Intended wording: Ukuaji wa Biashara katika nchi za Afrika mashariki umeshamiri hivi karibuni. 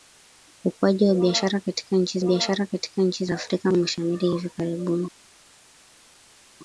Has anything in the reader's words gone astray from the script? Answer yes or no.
yes